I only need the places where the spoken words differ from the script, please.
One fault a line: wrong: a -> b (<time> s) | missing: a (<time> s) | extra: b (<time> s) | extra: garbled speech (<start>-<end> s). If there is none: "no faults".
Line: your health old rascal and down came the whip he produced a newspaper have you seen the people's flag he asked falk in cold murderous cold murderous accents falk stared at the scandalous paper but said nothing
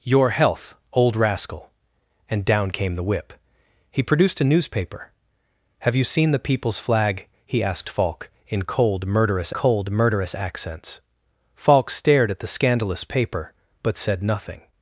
no faults